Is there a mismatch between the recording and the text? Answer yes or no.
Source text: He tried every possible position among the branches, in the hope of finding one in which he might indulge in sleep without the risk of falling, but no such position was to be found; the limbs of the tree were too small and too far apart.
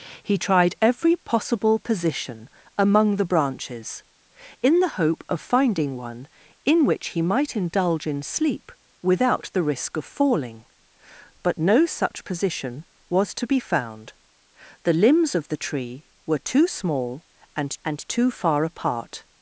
yes